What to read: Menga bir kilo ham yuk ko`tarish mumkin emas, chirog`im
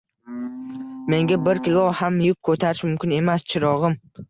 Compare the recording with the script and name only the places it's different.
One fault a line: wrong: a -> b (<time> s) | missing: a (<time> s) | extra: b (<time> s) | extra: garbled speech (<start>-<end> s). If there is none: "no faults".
no faults